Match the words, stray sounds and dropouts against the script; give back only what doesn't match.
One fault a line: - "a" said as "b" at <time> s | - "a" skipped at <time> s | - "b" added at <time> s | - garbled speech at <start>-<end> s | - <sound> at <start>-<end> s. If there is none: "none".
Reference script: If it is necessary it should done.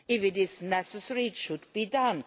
- "be" added at 1.7 s